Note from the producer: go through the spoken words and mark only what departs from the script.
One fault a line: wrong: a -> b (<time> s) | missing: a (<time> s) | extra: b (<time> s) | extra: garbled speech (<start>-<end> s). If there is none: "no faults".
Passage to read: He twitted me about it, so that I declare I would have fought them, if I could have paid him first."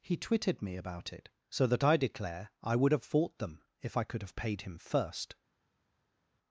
no faults